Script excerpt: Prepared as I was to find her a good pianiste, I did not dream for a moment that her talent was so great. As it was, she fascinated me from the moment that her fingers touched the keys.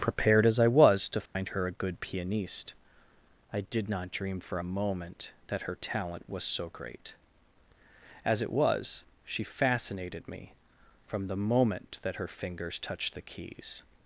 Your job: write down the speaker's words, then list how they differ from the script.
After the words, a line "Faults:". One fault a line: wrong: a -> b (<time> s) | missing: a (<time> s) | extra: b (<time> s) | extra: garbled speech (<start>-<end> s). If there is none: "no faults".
Prepared as I was to find her a good pianiste, I did not dream for a moment that her talent was so great. As it was, she fascinated me from the moment that her fingers touched the keys.
Faults:
no faults